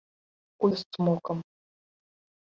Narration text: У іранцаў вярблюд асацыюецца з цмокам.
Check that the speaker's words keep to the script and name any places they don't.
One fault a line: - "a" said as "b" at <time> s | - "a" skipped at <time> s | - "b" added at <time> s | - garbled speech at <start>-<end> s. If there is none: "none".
- "іранцаў вярблюд асацыюецца" skipped at 0.7 s